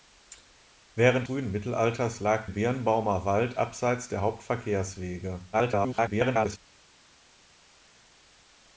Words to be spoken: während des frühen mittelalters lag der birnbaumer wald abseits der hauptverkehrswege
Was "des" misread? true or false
true